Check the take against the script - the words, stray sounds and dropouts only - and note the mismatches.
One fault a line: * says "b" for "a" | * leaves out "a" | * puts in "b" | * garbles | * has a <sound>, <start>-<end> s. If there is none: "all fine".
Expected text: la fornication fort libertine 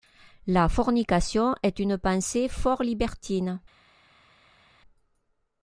* puts in "est une pensée"